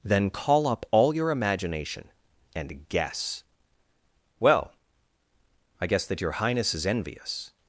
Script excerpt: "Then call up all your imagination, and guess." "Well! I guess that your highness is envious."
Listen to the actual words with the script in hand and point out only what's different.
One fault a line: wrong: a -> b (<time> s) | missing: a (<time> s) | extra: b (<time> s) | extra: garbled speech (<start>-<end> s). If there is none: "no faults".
no faults